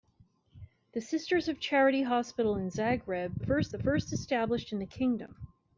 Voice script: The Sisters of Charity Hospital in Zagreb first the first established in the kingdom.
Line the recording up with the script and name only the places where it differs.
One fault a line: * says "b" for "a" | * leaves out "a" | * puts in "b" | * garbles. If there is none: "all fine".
all fine